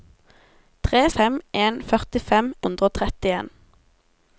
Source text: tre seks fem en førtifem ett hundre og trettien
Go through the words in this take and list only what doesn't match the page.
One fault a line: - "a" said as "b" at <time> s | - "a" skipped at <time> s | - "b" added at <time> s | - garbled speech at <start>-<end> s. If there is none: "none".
- "seks" skipped at 1.0 s
- "ett" skipped at 2.5 s